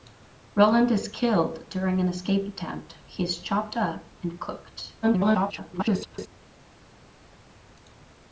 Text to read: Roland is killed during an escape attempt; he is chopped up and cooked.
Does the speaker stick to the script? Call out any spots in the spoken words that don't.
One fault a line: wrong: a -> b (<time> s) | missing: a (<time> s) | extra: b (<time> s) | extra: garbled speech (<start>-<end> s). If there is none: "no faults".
extra: garbled speech (5.0-6.3 s)